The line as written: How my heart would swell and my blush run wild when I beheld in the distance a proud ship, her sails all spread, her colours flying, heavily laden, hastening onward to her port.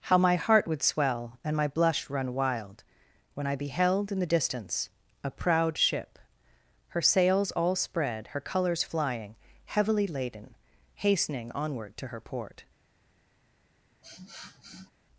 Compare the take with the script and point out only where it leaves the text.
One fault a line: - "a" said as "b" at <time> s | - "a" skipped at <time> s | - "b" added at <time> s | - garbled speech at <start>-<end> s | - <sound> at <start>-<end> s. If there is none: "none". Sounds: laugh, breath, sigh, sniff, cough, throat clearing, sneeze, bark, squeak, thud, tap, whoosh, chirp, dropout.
- sniff at 14.0-14.9 s